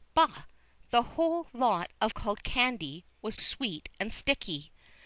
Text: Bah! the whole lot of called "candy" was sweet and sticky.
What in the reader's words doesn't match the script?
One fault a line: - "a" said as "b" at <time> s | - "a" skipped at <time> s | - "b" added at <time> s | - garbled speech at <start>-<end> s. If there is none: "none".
none